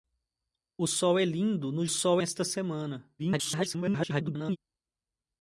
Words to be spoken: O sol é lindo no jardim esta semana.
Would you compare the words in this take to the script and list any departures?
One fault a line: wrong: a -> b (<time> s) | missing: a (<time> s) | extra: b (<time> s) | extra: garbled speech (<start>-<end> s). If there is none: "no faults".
wrong: jardim -> sol (1.9 s)
extra: garbled speech (3.2-4.6 s)